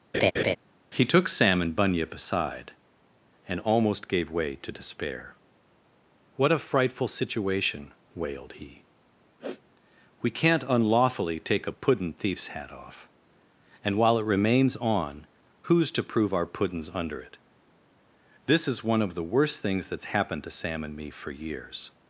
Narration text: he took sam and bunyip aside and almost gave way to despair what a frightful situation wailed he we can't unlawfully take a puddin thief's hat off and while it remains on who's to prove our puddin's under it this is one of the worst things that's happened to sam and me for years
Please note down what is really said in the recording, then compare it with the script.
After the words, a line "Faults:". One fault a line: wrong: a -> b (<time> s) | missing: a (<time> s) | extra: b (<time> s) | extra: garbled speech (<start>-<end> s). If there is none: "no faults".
he took sam and bunyip aside and almost gave way to despair what a frightful situation wailed he we can't unlawfully take a puddin thief's hat off and while it remains on who's to prove our puddin's under it this is one of the worst things that's happened to sam and me for years
Faults:
no faults